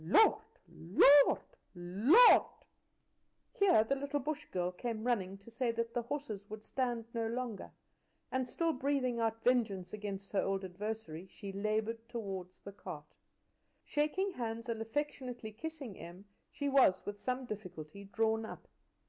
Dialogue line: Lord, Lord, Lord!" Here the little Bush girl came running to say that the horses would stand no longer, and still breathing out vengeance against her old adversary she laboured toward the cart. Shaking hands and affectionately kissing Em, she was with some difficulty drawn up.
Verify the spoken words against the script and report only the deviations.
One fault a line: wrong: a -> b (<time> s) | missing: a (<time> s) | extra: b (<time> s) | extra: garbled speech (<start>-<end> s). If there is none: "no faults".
no faults